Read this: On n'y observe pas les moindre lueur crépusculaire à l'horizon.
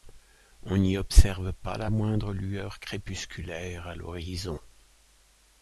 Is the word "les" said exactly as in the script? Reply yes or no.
no